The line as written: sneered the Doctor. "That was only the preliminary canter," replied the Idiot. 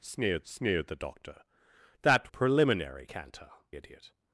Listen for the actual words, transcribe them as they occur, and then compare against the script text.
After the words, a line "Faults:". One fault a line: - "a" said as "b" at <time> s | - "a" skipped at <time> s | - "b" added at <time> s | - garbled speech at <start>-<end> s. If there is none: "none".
sneered sneered the Doctor. "That preliminary canter," Idiot.
Faults:
- "sneered" added at 0.4 s
- "was only the" skipped at 2.3 s
- "replied the" skipped at 3.5 s